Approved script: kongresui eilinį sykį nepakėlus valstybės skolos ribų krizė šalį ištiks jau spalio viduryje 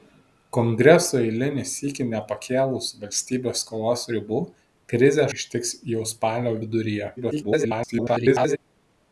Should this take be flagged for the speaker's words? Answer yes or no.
yes